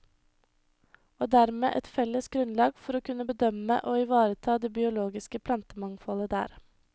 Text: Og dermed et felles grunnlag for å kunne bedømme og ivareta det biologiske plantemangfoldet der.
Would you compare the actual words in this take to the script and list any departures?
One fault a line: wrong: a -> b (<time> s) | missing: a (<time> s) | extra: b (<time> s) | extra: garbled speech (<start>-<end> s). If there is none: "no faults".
no faults